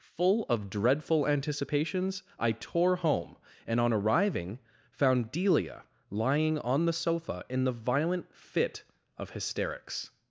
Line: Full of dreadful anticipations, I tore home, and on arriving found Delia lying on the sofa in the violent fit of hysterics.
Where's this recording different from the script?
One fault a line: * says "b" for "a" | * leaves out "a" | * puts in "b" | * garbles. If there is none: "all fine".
all fine